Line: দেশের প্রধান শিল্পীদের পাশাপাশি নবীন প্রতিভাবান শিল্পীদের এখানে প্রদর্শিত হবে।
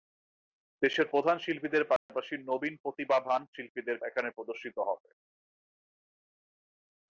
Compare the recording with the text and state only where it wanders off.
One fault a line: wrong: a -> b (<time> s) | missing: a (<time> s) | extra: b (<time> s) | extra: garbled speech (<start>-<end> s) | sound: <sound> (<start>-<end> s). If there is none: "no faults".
sound: dropout (2.0-2.1 s)